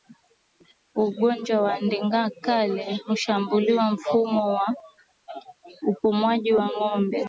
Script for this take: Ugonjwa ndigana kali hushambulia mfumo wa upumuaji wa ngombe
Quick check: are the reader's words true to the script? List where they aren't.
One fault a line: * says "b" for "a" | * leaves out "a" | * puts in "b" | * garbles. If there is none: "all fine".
* puts in "wa"